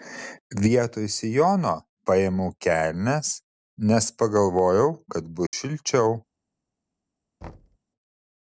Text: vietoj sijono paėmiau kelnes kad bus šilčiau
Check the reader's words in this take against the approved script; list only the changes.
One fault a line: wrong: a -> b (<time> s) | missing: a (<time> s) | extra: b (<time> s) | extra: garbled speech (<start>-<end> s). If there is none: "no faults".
extra: nes pagalvojau (3.9 s)